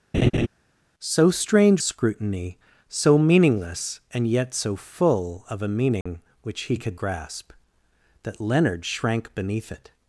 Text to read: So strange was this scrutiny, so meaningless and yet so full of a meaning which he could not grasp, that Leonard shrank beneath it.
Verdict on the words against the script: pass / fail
fail